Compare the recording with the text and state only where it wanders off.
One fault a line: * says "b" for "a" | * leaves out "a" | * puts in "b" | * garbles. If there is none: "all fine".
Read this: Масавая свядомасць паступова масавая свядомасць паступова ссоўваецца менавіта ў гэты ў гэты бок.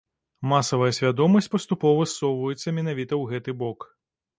* leaves out "масавая свядомасць паступова"
* leaves out "ў гэты"